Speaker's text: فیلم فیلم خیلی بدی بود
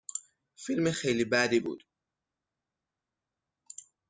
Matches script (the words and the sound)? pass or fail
fail